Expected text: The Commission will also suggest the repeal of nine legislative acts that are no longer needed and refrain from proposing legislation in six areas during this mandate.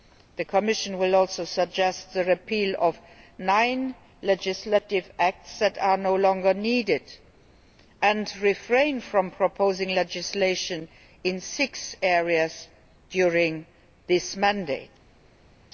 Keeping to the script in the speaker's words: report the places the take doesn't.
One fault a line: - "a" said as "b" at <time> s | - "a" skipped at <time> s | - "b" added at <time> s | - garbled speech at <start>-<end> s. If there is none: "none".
none